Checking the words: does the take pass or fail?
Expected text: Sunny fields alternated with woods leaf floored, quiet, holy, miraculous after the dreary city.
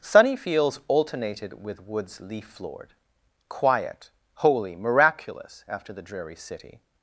pass